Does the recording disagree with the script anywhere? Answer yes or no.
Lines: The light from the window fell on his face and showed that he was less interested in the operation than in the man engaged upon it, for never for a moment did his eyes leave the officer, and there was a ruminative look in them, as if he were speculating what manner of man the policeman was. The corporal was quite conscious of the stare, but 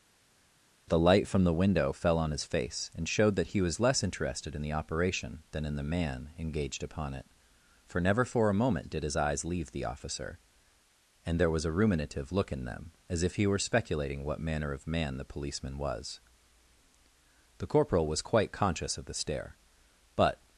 no